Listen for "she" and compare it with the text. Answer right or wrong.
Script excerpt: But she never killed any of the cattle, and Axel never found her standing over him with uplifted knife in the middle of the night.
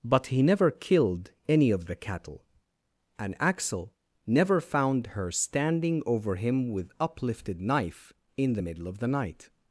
wrong